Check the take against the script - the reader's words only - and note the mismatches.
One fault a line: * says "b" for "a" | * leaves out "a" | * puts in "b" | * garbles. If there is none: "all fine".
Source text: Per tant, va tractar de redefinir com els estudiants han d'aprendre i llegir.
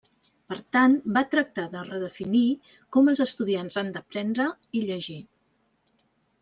all fine